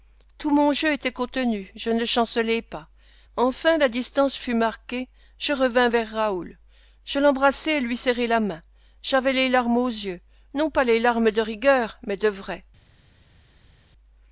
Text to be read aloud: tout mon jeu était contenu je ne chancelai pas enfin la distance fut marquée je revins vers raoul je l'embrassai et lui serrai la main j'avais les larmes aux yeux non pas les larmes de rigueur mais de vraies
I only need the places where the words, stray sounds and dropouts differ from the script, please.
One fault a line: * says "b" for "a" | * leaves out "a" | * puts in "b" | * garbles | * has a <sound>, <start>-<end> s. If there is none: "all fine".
all fine